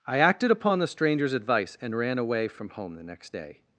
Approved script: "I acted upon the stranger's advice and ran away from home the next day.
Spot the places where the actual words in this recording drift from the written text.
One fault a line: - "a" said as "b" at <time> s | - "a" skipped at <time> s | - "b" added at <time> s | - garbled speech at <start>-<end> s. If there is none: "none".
none